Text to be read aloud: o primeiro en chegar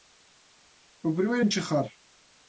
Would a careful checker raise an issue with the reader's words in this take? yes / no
no